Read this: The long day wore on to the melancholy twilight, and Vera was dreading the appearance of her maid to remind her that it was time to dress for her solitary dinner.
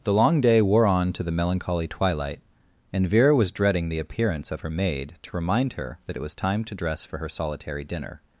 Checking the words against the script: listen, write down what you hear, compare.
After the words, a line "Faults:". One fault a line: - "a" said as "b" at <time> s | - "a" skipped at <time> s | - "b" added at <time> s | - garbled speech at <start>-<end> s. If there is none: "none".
The long day wore on to the melancholy twilight, and Vera was dreading the appearance of her maid to remind her that it was time to dress for her solitary dinner.
Faults:
none